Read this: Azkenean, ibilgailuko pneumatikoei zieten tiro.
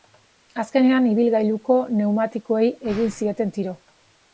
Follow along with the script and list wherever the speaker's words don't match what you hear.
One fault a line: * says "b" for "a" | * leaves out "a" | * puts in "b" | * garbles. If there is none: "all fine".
* puts in "egin"